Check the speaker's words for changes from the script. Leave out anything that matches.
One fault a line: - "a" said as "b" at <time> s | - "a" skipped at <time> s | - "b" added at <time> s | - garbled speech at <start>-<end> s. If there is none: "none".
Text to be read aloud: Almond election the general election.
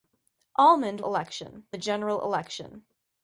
none